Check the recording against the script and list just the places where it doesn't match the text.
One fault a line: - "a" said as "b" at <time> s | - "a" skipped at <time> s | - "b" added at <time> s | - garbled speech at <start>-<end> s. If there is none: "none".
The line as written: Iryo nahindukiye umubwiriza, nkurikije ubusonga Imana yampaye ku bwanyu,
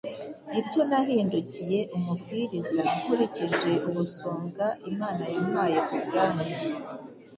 none